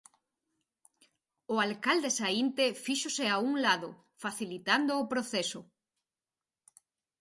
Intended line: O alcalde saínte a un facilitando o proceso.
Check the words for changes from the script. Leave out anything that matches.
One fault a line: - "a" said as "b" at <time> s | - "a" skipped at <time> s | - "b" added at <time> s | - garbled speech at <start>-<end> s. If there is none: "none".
- "fíxose" added at 2.8 s
- "lado" added at 3.7 s